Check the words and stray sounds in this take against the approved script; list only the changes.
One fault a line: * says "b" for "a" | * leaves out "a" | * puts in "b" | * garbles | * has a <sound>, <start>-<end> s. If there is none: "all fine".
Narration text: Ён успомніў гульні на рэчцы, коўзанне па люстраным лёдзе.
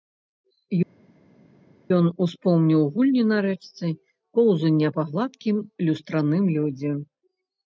* puts in "гладкім"